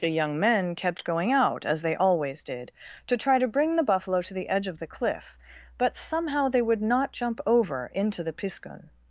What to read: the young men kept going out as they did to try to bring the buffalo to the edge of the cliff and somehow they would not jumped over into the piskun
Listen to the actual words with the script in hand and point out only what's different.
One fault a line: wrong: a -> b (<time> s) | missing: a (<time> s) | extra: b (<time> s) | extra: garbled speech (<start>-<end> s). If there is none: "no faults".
extra: always (1.9 s)
wrong: and -> but (5.8 s)
wrong: jumped -> jump (7.1 s)